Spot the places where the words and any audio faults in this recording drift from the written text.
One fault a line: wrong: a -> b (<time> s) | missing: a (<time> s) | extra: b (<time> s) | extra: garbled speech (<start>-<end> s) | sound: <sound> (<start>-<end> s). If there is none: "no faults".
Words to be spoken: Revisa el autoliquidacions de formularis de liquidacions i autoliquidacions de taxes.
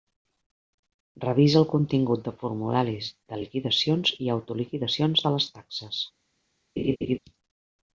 wrong: autoliquidacions -> contingut (1.7 s)
extra: les (5.4 s)
sound: laugh (6.8-7.2 s)